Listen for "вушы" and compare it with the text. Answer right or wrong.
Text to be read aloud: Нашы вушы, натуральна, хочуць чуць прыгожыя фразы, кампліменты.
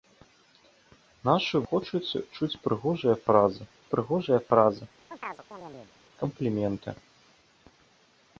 wrong